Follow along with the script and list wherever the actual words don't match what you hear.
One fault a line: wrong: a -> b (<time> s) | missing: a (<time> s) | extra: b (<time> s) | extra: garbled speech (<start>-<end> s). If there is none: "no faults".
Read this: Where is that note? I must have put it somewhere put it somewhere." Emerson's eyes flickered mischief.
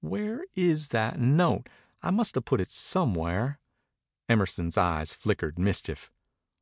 missing: put it somewhere (3.6 s)